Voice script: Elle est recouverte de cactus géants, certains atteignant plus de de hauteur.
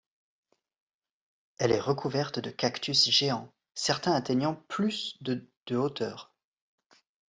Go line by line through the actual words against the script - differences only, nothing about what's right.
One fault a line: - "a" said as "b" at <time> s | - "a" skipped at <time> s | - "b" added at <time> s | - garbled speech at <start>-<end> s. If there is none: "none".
none